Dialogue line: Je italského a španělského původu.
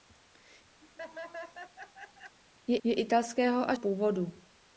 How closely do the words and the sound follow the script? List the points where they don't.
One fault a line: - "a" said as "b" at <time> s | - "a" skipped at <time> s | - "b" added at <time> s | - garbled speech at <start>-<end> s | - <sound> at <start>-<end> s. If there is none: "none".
- laugh at 0.8-2.4 s
- "je" added at 2.8 s
- "španělského" skipped at 3.8 s